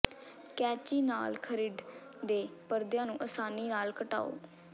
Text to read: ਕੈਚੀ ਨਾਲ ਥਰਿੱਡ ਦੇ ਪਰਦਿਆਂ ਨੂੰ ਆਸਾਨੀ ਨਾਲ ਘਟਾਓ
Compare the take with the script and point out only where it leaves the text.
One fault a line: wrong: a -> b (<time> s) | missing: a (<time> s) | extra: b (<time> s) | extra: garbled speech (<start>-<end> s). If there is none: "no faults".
no faults